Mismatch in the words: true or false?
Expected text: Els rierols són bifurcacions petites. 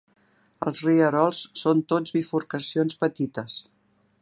true